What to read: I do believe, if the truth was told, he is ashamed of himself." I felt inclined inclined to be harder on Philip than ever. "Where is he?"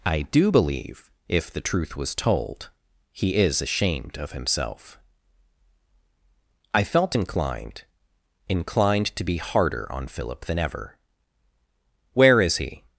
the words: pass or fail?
pass